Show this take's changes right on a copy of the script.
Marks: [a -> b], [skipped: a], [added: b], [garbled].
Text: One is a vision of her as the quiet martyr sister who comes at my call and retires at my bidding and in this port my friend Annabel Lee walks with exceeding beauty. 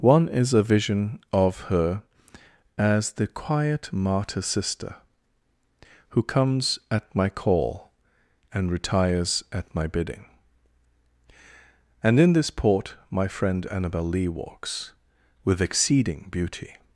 One is a vision of her as the quiet martyr sister who comes at my call and retires at my bidding and in this port my friend Annabel Lee walks with exceeding beauty.